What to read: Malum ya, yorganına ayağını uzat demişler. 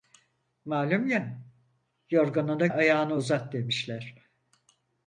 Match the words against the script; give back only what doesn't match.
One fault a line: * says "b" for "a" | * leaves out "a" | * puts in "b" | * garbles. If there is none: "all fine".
all fine